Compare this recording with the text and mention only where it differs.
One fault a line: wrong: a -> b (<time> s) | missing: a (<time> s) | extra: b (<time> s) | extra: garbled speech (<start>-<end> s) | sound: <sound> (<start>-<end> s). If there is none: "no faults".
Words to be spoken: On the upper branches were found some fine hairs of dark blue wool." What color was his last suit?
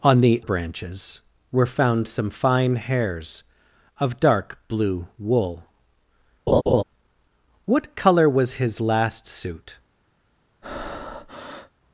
missing: upper (0.4 s)
sound: laugh (6.5-6.8 s)
sound: breath (10.6-11.7 s)